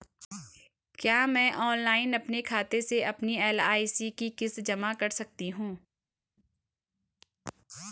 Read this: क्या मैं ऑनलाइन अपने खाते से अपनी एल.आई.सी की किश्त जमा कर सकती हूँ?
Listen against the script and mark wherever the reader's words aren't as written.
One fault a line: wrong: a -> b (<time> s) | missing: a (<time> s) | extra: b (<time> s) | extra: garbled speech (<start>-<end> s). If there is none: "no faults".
no faults